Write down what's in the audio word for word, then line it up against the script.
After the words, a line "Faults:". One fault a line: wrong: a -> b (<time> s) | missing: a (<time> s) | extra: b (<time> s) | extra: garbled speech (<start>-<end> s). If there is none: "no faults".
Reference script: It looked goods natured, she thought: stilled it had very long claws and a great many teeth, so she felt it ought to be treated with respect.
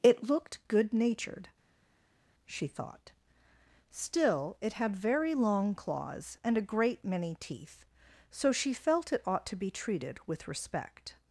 It looked good natured, she thought: still it had very long claws and a great many teeth, so she felt it ought to be treated with respect.
Faults:
wrong: goods -> good (0.7 s)
wrong: stilled -> still (3.9 s)